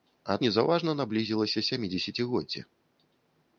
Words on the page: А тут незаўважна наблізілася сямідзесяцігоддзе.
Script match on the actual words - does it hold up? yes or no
no